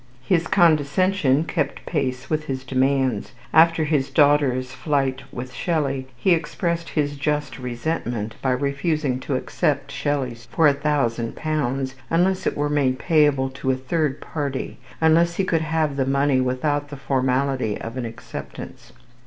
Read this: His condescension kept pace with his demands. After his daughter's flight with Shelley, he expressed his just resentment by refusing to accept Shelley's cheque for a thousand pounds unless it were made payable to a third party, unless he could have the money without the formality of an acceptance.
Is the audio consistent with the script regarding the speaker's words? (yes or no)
no